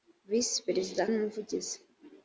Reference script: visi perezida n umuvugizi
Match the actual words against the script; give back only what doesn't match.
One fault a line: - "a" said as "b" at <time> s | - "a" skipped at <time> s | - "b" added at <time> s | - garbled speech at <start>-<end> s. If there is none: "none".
none